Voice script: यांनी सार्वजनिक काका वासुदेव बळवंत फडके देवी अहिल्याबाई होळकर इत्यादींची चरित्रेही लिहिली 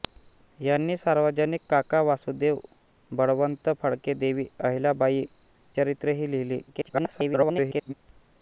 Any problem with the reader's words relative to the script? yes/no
yes